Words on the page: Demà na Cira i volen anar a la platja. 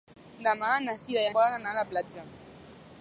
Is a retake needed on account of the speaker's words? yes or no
no